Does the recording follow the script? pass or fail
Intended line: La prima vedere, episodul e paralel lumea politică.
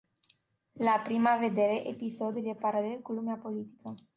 fail